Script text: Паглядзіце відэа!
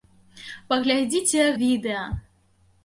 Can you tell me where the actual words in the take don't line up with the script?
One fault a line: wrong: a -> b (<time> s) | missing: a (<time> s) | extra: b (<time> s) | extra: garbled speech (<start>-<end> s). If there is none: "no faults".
no faults